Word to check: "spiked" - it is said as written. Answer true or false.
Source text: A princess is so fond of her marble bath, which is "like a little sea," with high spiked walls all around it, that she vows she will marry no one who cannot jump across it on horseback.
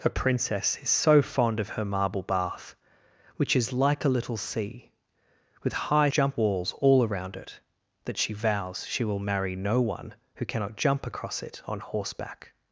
false